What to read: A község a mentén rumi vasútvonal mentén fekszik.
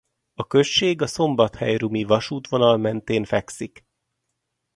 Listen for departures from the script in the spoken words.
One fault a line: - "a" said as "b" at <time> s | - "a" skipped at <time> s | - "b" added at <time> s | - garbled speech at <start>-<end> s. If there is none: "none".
- "mentén" said as "szombathely" at 1.1 s